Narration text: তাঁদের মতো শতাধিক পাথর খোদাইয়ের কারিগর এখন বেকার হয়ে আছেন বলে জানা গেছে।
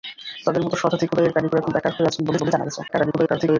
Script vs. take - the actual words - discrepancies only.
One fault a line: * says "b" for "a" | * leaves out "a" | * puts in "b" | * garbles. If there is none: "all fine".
* leaves out "পাথর"
* puts in "বলে"
* garbles